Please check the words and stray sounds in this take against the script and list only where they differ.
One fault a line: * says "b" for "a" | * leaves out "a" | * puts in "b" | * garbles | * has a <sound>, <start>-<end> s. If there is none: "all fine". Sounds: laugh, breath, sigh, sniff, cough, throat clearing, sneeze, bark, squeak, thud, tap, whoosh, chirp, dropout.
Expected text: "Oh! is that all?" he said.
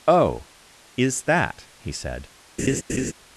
* leaves out "all"
* has a laugh, 2.6-3.1 s